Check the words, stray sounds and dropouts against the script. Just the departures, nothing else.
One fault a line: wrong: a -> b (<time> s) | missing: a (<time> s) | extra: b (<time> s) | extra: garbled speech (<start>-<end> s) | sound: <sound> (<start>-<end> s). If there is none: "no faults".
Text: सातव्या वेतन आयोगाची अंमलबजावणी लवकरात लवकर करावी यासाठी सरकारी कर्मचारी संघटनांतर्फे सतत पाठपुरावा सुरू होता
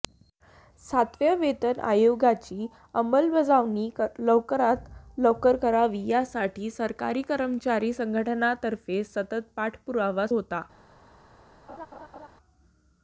missing: सुरू (10.3 s)
sound: laugh (11.7-12.3 s)